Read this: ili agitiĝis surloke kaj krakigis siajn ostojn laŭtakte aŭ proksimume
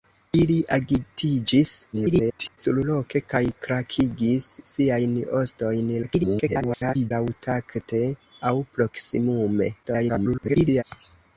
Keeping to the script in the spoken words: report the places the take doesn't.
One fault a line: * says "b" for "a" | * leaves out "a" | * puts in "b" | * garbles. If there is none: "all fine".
* garbles
* garbles
* garbles